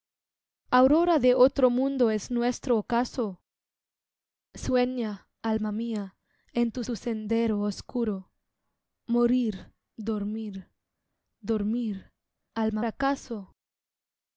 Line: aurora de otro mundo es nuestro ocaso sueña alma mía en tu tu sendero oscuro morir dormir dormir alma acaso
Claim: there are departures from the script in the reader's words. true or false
false